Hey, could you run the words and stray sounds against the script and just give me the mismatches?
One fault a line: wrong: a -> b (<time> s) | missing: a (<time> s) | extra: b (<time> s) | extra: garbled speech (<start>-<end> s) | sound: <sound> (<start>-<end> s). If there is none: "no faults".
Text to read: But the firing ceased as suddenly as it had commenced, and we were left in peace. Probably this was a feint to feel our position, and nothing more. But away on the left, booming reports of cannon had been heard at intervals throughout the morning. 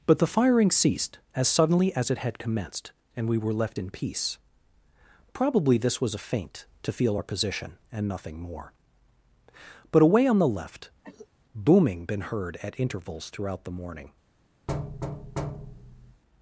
sound: cough (11.0-11.3 s)
missing: reports of cannon had (12.0 s)
sound: thud (14.7-16.2 s)